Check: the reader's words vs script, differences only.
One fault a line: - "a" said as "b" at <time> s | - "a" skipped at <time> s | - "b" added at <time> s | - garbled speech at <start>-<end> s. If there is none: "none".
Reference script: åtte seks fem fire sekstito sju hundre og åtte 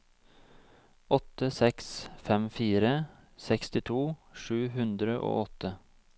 none